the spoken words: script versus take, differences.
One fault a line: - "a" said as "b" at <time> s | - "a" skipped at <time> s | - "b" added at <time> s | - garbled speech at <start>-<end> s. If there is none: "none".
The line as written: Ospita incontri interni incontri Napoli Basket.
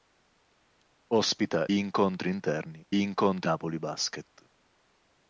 none